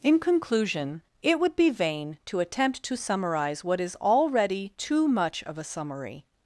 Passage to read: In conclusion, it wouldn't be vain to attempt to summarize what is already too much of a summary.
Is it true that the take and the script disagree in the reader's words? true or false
true